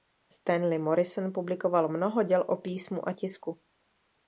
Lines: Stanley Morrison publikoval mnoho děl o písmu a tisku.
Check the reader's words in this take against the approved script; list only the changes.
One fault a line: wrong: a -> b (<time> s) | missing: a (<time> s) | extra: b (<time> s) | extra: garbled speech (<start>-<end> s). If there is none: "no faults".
no faults